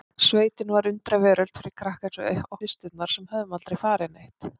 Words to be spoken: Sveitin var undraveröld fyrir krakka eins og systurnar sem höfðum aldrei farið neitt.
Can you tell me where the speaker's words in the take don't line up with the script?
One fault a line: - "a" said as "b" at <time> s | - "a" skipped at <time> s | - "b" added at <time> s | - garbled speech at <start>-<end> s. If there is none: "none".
none